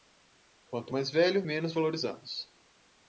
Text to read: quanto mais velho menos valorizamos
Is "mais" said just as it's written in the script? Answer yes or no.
yes